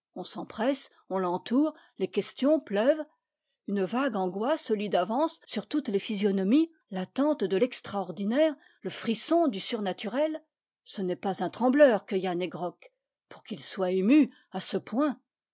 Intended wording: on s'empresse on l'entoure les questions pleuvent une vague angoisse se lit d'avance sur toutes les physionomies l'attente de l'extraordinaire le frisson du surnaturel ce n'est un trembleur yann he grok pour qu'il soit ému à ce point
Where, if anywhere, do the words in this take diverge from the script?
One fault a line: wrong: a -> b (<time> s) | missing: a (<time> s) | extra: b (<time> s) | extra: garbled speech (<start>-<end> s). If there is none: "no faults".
extra: pas (11.2 s)
extra: que (12.1 s)